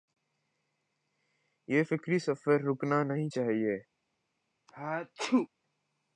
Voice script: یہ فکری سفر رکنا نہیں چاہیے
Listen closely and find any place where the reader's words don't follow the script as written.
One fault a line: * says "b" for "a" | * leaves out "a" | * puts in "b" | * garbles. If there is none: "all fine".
all fine